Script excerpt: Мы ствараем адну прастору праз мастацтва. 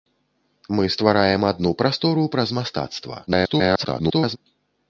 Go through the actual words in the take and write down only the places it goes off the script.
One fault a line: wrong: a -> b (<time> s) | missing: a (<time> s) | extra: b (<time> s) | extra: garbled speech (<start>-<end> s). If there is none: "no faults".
extra: garbled speech (3.3-4.4 s)